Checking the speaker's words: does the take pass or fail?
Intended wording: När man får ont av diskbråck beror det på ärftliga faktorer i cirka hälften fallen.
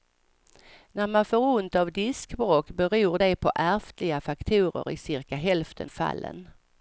pass